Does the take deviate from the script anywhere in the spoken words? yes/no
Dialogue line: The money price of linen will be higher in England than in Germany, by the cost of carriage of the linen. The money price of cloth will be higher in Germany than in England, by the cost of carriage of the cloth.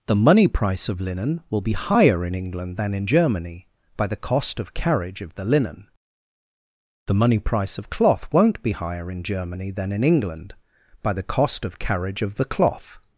yes